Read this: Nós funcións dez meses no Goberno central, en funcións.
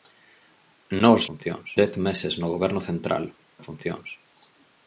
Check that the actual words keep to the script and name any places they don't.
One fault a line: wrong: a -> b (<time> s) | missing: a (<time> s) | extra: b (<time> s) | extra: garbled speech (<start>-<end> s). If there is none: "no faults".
no faults